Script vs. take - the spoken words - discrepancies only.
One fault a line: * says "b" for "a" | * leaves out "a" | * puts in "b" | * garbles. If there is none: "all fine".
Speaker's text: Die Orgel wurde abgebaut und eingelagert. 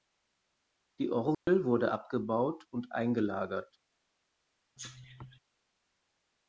all fine